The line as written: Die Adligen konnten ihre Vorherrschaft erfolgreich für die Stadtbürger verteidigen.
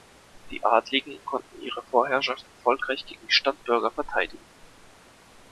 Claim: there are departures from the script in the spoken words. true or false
true